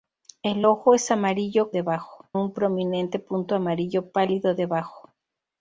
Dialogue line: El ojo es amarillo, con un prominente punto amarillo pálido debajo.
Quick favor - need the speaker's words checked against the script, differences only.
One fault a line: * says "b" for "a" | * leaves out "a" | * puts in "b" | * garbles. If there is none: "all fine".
* says "debajo" for "con"